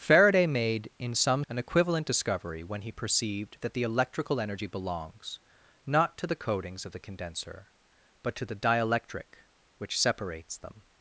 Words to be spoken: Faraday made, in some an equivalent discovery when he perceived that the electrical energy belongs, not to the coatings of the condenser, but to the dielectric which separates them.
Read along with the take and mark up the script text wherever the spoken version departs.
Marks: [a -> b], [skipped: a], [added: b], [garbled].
Faraday made, in some an equivalent discovery when he perceived that the electrical energy belongs, not to the coatings of the condenser, but to the dielectric which separates them.